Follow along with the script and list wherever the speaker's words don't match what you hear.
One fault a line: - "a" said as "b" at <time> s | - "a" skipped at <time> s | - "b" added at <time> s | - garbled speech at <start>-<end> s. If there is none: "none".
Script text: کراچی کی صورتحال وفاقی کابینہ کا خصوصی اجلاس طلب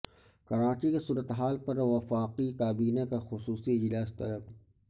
- "پر" added at 1.6 s